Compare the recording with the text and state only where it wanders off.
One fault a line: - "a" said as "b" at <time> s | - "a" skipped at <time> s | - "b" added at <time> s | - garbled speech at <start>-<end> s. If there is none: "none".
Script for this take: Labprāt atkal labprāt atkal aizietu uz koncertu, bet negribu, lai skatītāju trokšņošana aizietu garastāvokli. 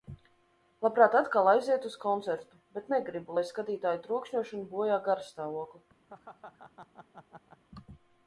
- "labprāt atkal" skipped at 1.5 s
- "aizietu" said as "bojā" at 4.8 s